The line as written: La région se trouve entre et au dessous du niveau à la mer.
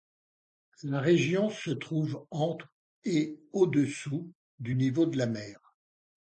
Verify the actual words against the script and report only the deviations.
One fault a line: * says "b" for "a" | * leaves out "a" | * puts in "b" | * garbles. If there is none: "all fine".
* says "de" for "à"